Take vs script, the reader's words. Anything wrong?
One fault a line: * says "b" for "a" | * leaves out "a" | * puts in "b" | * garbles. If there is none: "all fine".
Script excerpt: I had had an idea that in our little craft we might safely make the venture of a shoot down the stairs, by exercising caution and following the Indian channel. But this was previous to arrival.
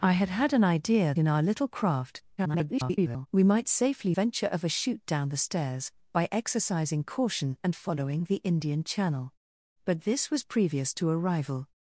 * leaves out "that"
* garbles
* leaves out "make the"